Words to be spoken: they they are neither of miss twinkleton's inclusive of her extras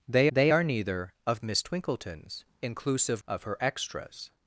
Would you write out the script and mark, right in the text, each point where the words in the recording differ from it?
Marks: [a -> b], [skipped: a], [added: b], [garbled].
they they are neither of miss twinkleton's inclusive of her extras